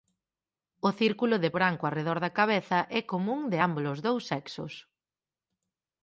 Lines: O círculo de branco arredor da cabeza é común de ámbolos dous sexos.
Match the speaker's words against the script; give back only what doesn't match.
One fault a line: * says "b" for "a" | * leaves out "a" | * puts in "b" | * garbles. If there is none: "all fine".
all fine